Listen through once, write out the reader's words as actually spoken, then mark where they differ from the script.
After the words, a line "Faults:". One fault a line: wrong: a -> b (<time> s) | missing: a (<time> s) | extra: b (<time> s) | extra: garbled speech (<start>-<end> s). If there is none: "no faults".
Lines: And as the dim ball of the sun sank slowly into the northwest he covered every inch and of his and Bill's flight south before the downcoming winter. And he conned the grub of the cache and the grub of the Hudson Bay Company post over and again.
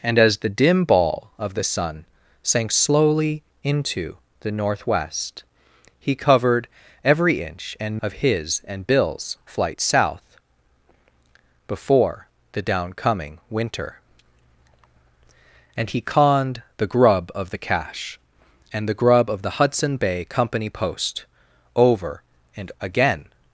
And as the dim ball of the sun sank slowly into the northwest he covered every inch and of his and Bill's flight south before the downcoming winter. And he conned the grub of the cache and the grub of the Hudson Bay Company post over and again.
Faults:
no faults